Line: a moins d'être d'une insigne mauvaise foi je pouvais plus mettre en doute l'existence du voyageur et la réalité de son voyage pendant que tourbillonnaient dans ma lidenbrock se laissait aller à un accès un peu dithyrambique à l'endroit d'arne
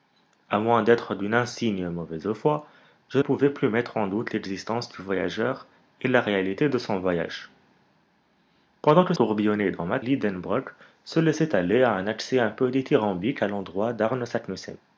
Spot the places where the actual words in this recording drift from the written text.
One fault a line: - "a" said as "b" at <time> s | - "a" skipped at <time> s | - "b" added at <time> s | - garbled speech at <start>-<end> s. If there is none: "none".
none